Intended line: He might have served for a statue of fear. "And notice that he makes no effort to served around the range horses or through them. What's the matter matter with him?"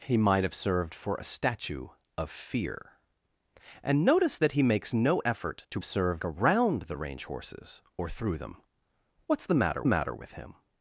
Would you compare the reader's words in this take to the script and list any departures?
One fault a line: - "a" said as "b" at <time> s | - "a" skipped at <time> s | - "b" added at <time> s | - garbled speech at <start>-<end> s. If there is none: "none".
none